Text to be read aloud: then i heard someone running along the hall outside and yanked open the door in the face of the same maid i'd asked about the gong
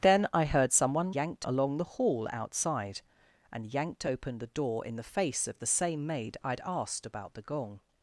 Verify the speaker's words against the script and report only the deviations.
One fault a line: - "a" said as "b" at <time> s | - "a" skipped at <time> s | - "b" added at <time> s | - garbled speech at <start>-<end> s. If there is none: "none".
- "running" said as "yanked" at 1.1 s